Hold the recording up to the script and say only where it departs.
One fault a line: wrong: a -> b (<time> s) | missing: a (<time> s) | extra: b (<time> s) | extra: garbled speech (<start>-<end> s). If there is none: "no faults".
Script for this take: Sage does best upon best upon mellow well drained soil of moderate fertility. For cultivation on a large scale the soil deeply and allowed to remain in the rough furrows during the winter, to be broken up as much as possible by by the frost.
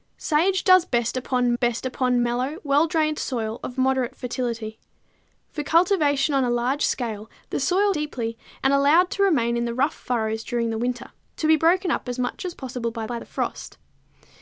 no faults